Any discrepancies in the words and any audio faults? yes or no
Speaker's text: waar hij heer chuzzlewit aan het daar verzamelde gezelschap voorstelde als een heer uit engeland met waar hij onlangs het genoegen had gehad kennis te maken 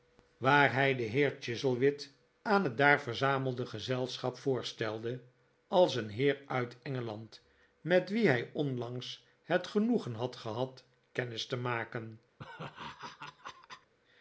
yes